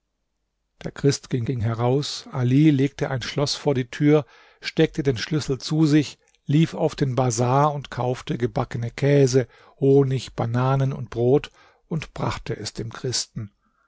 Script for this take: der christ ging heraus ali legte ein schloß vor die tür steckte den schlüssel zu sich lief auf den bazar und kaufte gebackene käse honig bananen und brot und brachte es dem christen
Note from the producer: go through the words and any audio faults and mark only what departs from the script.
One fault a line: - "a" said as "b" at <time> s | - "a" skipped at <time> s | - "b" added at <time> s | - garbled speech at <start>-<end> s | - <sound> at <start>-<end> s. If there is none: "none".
- "ging" added at 1.4 s